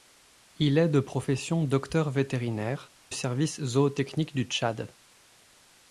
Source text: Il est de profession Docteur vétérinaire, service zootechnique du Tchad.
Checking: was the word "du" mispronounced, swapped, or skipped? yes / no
no